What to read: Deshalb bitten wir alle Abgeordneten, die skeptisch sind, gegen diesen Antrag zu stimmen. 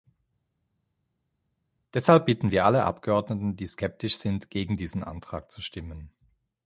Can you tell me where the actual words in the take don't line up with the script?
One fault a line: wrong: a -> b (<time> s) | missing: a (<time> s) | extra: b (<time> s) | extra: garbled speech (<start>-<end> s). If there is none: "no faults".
no faults